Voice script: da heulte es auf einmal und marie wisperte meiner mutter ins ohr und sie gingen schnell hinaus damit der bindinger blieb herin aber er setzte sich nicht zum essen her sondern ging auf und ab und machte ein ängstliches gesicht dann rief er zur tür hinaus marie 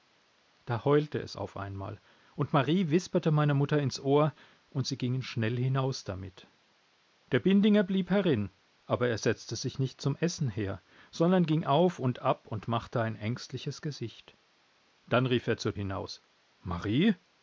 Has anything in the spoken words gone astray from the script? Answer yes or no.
yes